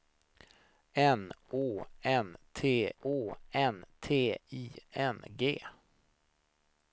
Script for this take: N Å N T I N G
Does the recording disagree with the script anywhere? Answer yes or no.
yes